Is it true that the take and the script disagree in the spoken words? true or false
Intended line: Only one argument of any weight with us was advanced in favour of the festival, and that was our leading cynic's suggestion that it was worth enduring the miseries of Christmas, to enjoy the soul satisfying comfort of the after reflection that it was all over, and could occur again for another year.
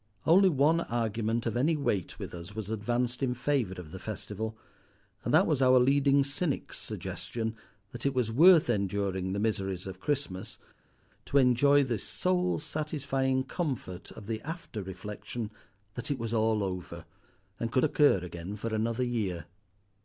false